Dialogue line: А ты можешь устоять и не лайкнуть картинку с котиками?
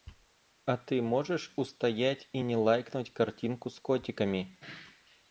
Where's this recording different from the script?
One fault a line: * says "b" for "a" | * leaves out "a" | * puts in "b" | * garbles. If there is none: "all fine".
all fine